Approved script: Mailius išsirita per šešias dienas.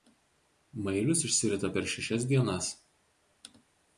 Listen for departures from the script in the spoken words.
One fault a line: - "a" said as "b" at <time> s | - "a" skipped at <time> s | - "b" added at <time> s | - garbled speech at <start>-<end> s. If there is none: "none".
none